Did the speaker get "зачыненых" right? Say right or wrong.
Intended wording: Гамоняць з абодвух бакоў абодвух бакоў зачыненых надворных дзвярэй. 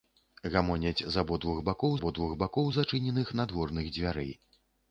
right